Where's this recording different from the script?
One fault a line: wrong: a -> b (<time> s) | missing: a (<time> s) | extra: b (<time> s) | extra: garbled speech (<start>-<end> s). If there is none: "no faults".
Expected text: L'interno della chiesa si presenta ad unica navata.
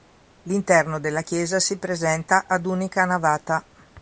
no faults